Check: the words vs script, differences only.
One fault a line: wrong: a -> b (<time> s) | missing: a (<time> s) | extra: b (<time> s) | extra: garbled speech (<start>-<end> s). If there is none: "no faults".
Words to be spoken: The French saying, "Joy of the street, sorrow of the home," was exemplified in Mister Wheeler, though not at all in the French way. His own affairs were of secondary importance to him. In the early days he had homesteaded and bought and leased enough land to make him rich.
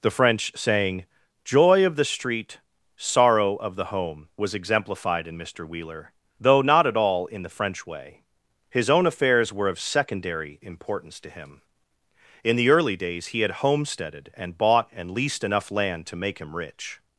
no faults